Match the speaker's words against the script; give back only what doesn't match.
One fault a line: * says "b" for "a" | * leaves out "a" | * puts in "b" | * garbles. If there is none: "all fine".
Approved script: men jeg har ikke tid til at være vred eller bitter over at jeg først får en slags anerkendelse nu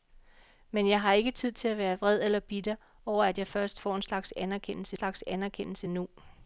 * puts in "slags anerkendelse"